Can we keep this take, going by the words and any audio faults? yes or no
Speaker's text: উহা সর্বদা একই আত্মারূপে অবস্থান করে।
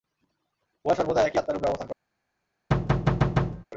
no